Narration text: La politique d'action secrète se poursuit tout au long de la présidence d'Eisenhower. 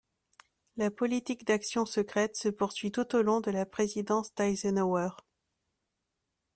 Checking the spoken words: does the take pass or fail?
pass